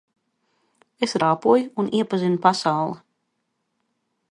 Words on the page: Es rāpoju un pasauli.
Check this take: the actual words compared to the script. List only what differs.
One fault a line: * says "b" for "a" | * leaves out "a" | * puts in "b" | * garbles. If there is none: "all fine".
* puts in "iepazinu"